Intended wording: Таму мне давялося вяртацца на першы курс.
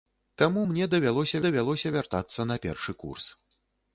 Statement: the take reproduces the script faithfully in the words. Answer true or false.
false